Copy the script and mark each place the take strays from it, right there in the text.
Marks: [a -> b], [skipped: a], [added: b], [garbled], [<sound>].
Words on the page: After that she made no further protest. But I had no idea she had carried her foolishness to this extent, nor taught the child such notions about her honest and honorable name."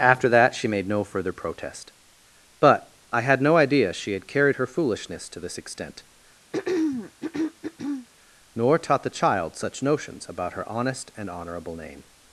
After that she made no further protest. But I had no idea she had carried her foolishness to this extent, [throat clearing] nor taught the child such notions about her honest and honorable name."